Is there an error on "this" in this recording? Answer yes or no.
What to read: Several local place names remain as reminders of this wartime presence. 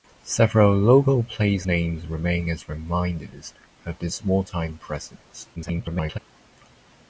no